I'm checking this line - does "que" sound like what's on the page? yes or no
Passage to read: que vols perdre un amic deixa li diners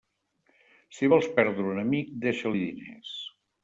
no